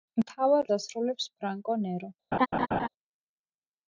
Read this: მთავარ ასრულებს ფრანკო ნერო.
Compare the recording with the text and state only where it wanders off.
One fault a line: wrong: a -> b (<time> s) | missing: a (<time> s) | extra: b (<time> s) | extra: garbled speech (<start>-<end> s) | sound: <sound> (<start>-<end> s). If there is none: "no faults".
sound: laugh (2.3-2.9 s)